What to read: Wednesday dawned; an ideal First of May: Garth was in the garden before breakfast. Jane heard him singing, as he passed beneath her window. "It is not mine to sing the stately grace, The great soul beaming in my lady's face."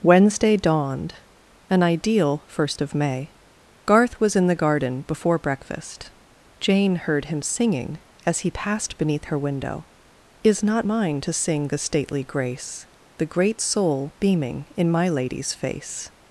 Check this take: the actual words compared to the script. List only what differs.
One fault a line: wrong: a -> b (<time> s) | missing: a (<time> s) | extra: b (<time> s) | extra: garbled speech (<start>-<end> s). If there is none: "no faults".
missing: It (9.8 s)